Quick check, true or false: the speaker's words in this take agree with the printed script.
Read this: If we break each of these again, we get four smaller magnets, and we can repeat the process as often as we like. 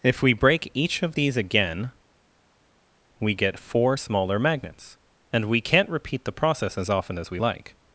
false